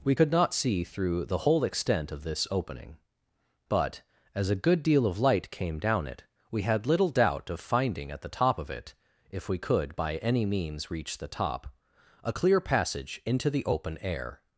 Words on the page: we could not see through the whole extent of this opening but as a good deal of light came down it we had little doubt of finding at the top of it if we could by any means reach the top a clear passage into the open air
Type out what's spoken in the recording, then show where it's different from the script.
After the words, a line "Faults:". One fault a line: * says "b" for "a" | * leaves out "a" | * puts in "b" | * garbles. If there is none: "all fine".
we could not see through the whole extent of this opening but as a good deal of light came down it we had little doubt of finding at the top of it if we could by any means reach the top a clear passage into the open air
Faults:
all fine